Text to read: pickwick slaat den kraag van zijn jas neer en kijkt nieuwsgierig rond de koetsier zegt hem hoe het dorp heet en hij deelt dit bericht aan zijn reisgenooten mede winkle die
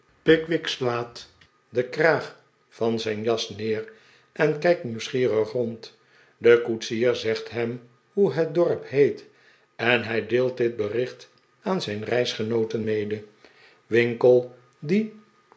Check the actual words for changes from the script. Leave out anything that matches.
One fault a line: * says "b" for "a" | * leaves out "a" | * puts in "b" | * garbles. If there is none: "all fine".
all fine